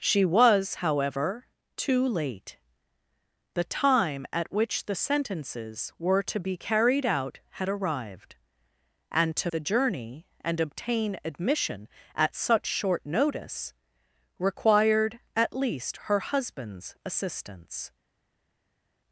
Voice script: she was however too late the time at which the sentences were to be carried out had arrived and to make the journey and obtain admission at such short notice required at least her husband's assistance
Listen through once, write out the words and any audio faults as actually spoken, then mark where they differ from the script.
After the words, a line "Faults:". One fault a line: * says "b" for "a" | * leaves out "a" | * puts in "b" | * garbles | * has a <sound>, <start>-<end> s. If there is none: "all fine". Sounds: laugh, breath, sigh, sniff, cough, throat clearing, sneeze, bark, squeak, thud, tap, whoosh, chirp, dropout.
she was however too late the time at which the sentences were to be carried out had arrived and to the journey and obtain admission at such short notice required at least her husband's assistance
Faults:
* leaves out "make"